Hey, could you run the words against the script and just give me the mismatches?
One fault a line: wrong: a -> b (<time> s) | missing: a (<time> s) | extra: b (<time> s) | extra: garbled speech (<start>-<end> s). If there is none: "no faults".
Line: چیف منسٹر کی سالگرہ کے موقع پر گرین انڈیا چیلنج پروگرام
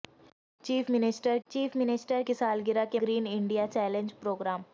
extra: چیف منسٹر (1.5 s)
missing: موقع پر (3.0 s)